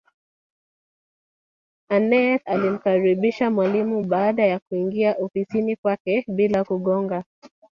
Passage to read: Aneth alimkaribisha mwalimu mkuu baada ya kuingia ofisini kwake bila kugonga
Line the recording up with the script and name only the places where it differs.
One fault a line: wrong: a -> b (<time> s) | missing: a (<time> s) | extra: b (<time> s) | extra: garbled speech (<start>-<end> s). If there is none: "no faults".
missing: mkuu (4.0 s)